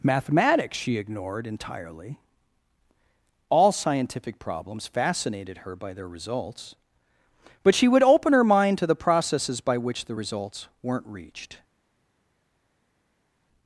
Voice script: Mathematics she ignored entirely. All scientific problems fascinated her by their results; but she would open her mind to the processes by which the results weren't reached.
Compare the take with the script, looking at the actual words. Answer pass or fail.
pass